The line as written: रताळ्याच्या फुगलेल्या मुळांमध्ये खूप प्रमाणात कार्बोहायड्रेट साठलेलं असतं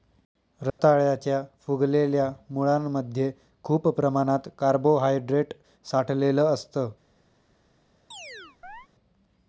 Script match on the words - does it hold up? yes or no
yes